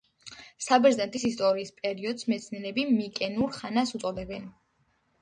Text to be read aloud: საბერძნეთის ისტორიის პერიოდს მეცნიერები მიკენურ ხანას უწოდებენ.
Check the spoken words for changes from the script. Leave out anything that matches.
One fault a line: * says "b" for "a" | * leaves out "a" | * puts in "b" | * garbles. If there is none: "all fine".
all fine